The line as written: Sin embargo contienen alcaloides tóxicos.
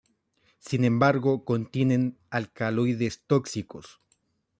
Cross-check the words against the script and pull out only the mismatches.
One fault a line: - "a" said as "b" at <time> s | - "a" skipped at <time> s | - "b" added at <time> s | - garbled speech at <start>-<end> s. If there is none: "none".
none